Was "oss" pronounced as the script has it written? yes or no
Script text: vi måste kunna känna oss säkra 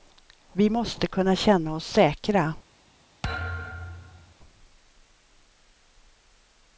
yes